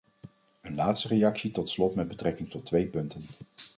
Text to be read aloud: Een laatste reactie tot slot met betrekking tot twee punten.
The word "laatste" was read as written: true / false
true